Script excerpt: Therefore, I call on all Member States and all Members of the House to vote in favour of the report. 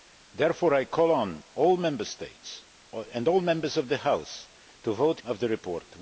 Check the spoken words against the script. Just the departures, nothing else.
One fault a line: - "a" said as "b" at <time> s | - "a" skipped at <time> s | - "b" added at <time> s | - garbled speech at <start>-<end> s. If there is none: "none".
- "in favour" skipped at 5.2 s